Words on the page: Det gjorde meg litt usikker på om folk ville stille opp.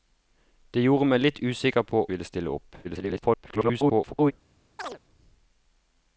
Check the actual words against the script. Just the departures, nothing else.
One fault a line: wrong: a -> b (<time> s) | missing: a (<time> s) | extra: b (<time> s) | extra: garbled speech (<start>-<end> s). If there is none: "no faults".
missing: om folk (2.0 s)
extra: garbled speech (2.8-4.3 s)